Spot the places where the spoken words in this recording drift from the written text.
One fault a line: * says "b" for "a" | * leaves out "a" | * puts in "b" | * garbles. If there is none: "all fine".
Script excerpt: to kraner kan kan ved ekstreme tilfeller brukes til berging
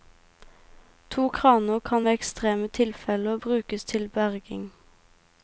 * leaves out "kan"